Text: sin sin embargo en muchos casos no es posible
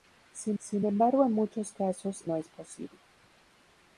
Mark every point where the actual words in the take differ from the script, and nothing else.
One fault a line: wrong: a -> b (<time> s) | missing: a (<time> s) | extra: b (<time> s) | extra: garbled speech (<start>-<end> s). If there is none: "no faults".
no faults